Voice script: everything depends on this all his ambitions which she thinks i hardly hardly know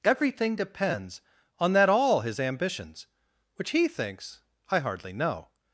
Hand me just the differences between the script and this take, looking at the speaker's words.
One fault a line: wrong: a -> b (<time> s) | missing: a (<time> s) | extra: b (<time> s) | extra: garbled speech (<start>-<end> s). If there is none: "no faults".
wrong: this -> that (1.7 s)
wrong: she -> he (3.7 s)
missing: hardly (5.1 s)